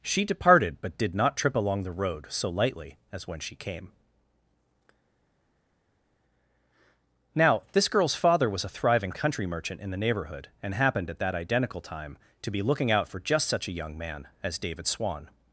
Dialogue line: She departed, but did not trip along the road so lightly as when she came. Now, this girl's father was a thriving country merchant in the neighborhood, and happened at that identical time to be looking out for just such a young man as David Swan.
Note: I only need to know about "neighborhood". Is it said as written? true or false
true